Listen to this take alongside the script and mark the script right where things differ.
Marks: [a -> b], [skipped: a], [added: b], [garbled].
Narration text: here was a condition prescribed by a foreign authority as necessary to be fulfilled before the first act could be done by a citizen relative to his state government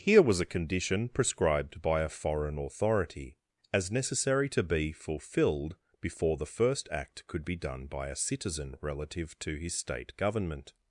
here was a condition prescribed by a foreign authority as necessary to be fulfilled before the first act could be done by a citizen relative to his state government